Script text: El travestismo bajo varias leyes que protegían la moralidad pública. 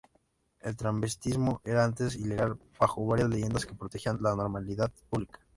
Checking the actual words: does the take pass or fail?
fail